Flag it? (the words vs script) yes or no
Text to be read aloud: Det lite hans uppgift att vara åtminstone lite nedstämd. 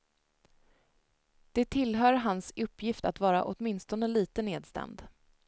yes